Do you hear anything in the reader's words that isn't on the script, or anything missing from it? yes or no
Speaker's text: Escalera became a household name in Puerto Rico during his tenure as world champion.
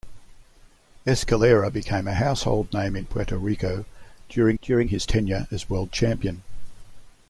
yes